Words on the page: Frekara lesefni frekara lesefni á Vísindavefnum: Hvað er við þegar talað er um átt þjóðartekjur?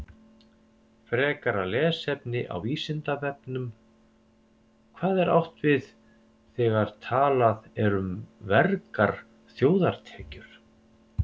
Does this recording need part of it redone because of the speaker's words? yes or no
yes